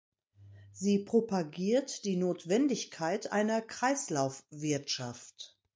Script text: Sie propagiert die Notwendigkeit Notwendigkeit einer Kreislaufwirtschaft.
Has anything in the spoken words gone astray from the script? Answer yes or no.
yes